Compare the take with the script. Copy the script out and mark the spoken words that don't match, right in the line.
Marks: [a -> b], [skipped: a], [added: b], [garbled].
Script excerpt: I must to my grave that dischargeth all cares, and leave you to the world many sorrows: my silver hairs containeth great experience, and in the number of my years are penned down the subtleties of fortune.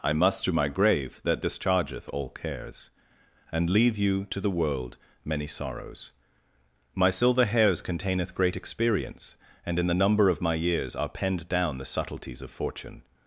I must to my grave that dischargeth all cares, and leave you to the world many sorrows: my silver hairs containeth great experience, and in the number of my years are penned down the subtleties of fortune.